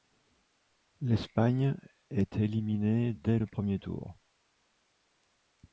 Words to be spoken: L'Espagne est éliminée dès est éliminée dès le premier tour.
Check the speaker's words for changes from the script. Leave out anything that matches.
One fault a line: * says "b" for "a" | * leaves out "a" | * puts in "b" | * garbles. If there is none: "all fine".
* leaves out "est éliminée dès"